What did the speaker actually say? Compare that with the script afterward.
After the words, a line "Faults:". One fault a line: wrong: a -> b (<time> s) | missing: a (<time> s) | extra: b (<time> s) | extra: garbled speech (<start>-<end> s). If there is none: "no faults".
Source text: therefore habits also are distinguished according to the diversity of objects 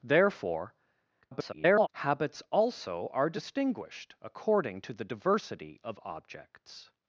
therefore [garbled] habits also are distinguished according to the diversity of objects
Faults:
extra: garbled speech (1.2-1.9 s)